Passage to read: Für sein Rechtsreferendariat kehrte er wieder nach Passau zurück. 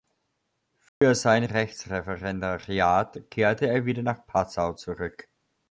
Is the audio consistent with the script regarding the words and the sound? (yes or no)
no